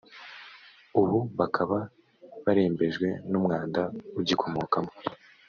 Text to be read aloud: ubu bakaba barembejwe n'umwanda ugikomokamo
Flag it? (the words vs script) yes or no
no